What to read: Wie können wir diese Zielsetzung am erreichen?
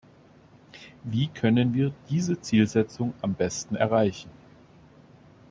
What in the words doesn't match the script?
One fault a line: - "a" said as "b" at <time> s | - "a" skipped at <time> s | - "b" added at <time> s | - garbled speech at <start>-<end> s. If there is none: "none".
- "besten" added at 3.4 s